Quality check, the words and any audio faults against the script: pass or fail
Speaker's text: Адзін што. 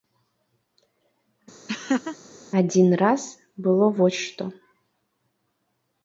fail